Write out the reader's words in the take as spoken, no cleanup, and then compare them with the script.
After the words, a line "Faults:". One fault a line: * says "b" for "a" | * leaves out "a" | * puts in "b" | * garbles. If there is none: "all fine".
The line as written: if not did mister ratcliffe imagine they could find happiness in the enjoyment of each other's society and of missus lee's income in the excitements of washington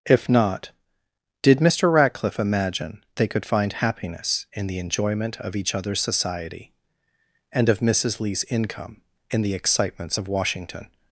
if not did mister ratcliffe imagine they could find happiness in the enjoyment of each other's society and of missus lee's income in the excitements of washington
Faults:
all fine